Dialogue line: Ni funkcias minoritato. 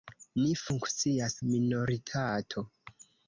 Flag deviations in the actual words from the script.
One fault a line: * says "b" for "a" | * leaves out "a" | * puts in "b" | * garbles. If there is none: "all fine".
all fine